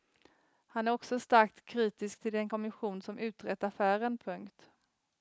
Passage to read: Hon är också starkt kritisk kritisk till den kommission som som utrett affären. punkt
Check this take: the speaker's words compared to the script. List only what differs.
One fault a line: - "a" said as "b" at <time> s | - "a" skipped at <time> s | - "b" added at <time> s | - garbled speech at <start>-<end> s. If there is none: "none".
- "Hon" said as "Han" at 0.7 s
- "kritisk" skipped at 2.2 s
- "som" skipped at 3.2 s